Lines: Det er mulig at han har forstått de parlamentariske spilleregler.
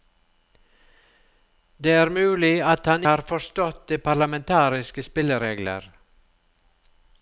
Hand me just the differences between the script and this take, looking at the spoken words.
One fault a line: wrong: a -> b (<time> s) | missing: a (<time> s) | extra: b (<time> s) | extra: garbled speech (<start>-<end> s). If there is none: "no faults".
no faults